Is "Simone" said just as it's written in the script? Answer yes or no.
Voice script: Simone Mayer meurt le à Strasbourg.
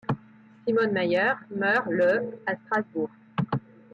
yes